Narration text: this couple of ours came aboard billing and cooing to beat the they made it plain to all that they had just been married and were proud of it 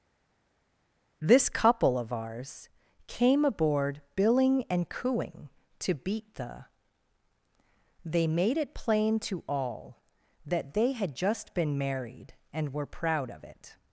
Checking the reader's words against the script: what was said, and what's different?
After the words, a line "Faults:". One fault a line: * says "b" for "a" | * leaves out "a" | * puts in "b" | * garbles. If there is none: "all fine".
this couple of ours came aboard billing and cooing to beat the they made it plain to all that they had just been married and were proud of it
Faults:
all fine